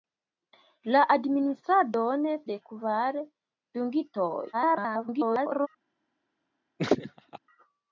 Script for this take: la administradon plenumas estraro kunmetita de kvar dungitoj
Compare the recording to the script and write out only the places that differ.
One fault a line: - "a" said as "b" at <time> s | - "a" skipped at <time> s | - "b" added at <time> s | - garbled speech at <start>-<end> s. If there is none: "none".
- "plenumas estraro kunmetita" skipped at 2.2 s
- garbled speech at 4.5-5.7 s